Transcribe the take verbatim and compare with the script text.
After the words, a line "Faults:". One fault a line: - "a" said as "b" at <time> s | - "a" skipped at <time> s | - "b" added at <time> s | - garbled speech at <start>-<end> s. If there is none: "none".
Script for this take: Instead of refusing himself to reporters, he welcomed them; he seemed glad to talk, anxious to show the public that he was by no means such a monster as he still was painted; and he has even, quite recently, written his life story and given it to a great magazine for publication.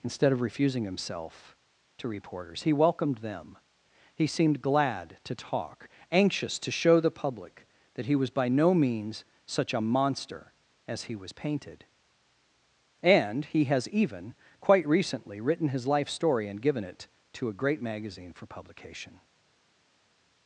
Instead of refusing himself to reporters, he welcomed them; he seemed glad to talk, anxious to show the public that he was by no means such a monster as he was painted; and he has even, quite recently, written his life story and given it to a great magazine for publication.
Faults:
- "still" skipped at 11.2 s